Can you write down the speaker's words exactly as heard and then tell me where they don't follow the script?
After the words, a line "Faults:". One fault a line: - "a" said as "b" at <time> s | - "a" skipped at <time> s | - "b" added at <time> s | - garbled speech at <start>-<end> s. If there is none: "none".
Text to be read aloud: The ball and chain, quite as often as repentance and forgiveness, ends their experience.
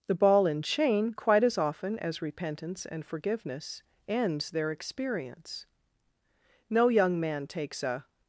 The ball and chain, quite as often as repentance and forgiveness, ends their experience. No young man takes a
Faults:
- "No young man takes a" added at 6.7 s